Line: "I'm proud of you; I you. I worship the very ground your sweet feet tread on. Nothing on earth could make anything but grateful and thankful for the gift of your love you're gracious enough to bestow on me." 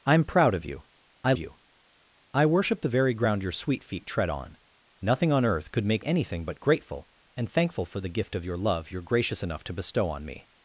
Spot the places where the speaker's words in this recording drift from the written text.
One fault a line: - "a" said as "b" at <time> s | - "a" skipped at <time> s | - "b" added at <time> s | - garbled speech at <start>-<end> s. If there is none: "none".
none